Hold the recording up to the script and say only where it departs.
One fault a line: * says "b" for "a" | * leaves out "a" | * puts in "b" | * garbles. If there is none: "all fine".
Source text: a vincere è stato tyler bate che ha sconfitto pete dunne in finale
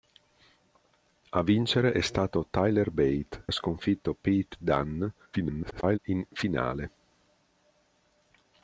* leaves out "che"
* garbles